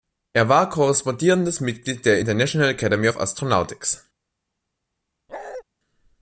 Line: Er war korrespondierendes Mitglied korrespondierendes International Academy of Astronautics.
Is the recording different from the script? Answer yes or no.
yes